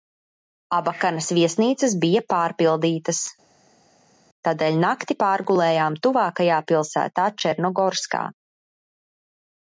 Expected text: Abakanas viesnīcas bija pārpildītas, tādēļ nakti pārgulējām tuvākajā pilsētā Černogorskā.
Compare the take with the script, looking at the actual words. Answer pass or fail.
pass